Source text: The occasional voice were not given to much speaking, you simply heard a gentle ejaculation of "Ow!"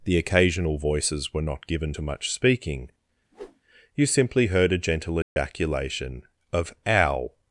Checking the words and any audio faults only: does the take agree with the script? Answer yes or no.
no